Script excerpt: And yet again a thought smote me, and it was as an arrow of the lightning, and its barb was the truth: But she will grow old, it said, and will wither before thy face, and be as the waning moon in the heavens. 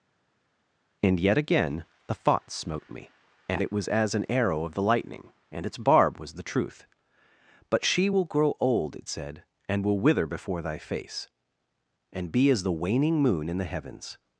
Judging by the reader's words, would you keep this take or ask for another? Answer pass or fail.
fail